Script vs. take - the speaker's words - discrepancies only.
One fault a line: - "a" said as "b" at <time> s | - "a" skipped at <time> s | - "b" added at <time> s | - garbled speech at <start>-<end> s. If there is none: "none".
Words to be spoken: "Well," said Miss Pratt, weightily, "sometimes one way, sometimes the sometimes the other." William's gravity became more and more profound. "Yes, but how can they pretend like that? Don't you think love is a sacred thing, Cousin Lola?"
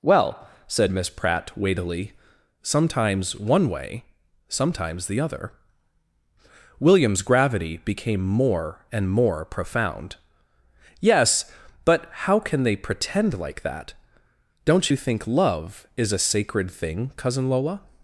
- "sometimes the" skipped at 5.2 s